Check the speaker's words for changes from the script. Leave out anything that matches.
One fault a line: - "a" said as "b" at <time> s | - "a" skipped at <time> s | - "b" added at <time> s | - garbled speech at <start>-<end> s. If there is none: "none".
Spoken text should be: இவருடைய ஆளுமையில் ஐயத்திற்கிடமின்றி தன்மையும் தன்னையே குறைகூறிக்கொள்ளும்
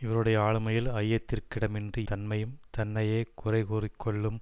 none